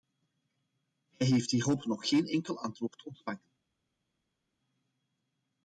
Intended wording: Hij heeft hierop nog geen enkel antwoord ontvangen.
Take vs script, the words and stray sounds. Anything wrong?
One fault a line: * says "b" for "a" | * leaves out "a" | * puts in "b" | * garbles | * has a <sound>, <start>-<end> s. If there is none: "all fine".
all fine